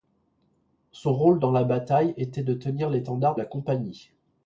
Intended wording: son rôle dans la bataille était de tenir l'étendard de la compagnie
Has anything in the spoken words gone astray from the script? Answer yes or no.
yes